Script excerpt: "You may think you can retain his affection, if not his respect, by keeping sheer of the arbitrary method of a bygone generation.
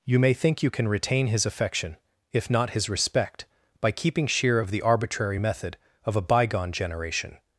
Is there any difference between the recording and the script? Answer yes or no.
no